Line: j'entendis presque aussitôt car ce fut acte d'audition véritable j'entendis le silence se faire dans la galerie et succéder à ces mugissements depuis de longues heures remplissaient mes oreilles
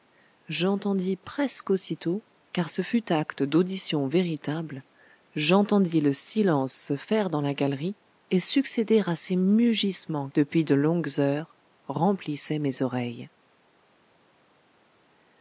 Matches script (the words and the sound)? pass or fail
pass